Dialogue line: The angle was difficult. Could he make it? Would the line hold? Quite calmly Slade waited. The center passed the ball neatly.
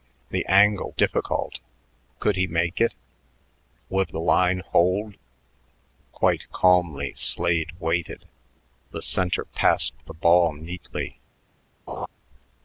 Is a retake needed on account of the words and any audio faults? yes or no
yes